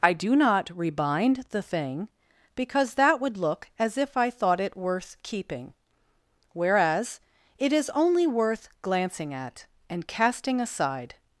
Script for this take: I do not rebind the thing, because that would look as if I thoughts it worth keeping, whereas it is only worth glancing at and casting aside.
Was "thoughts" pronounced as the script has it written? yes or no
no